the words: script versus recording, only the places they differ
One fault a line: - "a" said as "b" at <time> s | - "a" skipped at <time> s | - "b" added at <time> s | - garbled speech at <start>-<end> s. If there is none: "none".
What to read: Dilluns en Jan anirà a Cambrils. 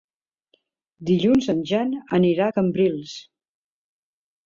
none